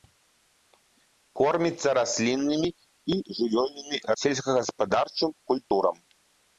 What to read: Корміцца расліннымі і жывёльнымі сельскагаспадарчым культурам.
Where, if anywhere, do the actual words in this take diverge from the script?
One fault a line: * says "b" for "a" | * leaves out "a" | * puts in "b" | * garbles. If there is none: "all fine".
all fine